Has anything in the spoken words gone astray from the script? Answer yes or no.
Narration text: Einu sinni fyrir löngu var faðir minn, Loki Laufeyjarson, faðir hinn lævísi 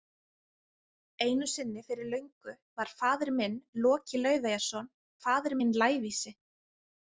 no